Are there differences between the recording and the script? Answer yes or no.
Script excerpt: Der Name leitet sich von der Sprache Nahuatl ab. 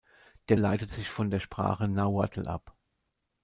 yes